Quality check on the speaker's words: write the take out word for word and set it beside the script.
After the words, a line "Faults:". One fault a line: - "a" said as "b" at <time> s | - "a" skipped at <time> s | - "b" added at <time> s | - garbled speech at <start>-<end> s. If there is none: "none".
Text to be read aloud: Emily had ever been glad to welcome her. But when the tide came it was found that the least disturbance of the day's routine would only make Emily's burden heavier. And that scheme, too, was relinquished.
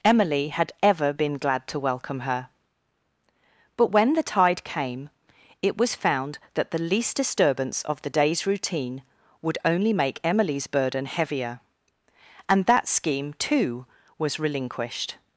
Emily had ever been glad to welcome her. But when the tide came it was found that the least disturbance of the day's routine would only make Emily's burden heavier. And that scheme, too, was relinquished.
Faults:
none